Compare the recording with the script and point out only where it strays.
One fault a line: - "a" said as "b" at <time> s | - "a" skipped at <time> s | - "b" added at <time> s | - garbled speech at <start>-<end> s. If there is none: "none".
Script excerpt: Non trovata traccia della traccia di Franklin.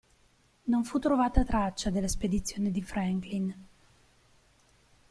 - "fu" added at 0.8 s
- "traccia" said as "spedizione" at 2.1 s